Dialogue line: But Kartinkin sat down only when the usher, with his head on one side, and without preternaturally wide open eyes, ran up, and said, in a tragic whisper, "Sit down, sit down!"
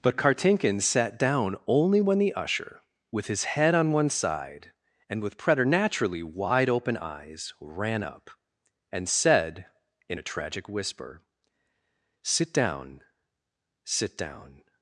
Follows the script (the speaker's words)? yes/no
no